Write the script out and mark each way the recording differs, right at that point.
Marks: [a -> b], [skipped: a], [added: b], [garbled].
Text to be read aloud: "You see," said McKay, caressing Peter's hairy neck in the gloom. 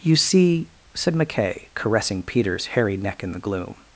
"You see," said McKay, caressing Peter's hairy neck in the gloom.